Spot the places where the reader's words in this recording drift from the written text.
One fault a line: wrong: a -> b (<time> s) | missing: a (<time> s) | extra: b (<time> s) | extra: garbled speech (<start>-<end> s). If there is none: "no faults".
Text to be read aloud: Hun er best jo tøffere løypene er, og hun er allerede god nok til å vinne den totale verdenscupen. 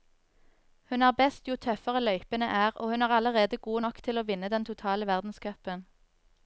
no faults